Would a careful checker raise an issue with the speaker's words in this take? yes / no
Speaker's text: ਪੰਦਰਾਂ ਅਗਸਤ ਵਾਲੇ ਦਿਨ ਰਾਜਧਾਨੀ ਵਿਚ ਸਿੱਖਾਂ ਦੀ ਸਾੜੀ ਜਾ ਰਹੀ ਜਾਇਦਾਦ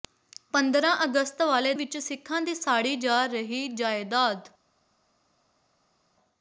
yes